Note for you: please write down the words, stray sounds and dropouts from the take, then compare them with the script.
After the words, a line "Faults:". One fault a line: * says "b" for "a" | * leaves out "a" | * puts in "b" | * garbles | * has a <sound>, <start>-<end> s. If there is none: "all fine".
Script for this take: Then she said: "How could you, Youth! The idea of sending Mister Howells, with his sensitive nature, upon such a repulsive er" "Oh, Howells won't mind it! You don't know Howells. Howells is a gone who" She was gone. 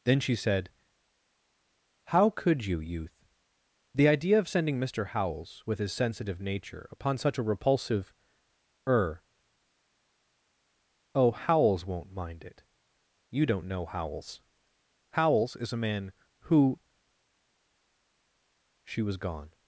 Then she said: "How could you, Youth! The idea of sending Mister Howells, with his sensitive nature, upon such a repulsive er" "Oh, Howells won't mind it! You don't know Howells. Howells is a man who" She was gone.
Faults:
* says "man" for "gone"